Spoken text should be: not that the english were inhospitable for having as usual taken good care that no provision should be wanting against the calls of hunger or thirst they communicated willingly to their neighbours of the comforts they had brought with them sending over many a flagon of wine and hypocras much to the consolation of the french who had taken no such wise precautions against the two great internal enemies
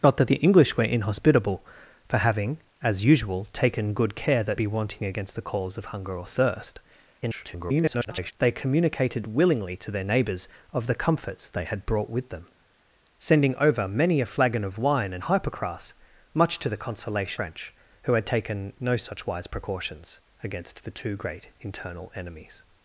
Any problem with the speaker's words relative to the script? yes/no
yes